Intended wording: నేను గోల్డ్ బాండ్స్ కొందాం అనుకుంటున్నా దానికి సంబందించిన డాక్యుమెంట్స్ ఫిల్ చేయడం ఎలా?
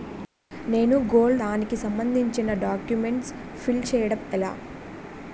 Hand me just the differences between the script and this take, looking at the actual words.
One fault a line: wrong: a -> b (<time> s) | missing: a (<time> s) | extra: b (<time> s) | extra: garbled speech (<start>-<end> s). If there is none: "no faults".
missing: బాండ్స్ కొందాం అనుకుంటున్నా (1.4 s)